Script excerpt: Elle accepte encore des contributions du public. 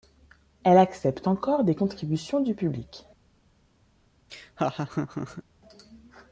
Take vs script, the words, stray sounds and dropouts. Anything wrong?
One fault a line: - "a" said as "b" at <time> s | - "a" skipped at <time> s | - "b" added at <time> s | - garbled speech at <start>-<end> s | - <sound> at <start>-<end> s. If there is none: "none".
- laugh at 4.3-5.4 s